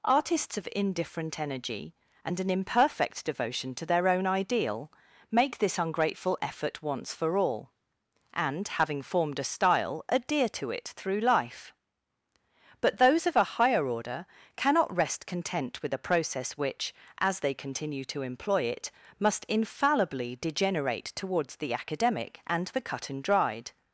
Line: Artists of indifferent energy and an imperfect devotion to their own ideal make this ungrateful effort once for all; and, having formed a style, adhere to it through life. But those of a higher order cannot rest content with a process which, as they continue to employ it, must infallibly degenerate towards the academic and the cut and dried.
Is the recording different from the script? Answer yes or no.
no